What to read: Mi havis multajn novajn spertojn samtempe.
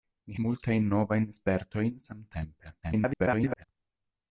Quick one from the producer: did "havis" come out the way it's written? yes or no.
no